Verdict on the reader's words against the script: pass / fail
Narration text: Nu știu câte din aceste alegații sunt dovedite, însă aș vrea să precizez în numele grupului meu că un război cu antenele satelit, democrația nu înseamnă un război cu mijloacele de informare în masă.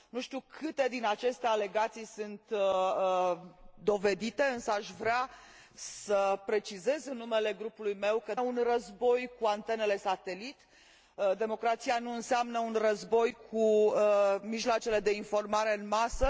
pass